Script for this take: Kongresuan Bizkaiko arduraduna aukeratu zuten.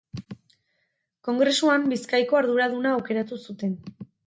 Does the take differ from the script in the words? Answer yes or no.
no